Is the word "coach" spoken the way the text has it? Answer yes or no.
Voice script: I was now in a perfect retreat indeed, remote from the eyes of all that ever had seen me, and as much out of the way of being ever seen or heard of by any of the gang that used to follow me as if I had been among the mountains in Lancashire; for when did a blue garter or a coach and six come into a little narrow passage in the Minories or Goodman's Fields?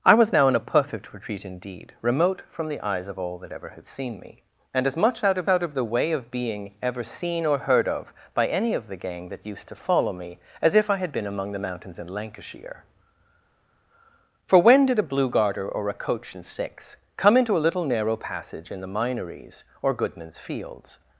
yes